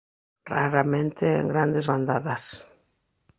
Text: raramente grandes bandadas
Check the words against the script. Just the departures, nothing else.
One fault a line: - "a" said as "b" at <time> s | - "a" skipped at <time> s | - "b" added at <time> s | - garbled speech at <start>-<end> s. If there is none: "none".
- "en" added at 1.4 s